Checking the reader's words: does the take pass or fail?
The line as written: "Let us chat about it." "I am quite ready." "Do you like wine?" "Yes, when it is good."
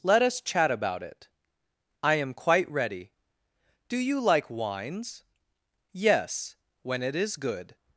fail